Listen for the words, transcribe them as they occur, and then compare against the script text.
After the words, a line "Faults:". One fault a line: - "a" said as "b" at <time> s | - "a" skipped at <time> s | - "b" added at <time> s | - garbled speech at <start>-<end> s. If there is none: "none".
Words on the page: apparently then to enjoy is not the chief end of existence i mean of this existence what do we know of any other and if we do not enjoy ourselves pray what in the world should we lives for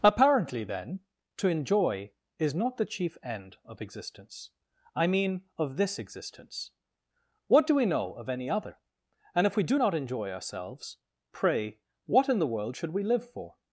apparently then to enjoy is not the chief end of existence i mean of this existence what do we know of any other and if we do not enjoy ourselves pray what in the world should we live for
Faults:
- "lives" said as "live" at 13.0 s